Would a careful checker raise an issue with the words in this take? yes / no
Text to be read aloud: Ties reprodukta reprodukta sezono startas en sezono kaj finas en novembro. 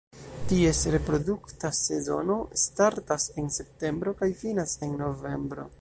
yes